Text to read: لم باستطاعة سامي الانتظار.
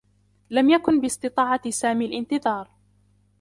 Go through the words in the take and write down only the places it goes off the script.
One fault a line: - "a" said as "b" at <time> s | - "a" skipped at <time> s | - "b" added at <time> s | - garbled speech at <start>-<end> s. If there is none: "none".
- "يكن" added at 0.7 s